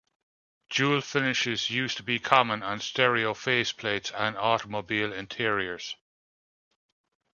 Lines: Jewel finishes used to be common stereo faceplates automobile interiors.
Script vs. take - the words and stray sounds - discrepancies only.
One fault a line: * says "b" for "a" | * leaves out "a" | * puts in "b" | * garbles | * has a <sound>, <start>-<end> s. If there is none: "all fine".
* puts in "on"
* puts in "and"